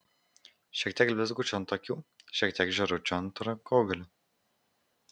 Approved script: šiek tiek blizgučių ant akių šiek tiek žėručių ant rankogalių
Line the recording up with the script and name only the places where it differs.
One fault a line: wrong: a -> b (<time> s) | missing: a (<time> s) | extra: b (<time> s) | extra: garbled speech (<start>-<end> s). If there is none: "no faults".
no faults